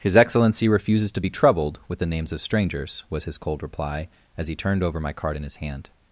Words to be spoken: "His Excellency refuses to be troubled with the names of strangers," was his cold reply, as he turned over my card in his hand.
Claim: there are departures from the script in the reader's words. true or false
false